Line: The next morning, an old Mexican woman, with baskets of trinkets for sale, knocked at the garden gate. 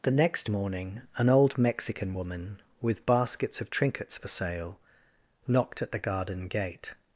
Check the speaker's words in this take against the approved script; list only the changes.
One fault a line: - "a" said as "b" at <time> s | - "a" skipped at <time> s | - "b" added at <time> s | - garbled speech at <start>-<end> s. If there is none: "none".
none